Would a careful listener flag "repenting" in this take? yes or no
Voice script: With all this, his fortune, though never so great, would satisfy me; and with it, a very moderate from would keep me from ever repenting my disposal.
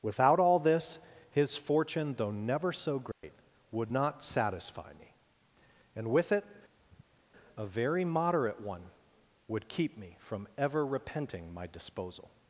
no